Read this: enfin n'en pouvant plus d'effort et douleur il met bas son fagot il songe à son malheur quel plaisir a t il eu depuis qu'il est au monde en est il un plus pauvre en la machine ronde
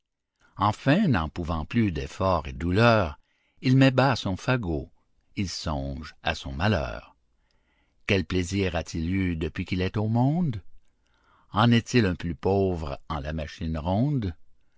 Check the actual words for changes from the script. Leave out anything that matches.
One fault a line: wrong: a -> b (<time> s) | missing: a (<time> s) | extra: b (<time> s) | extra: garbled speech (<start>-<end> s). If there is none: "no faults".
no faults